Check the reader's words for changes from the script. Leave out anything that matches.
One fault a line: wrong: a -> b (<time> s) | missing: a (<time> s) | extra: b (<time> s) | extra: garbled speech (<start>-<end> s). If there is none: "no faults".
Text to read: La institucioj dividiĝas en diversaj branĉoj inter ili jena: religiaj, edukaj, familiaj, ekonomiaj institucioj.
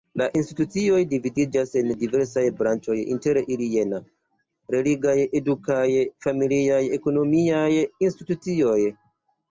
no faults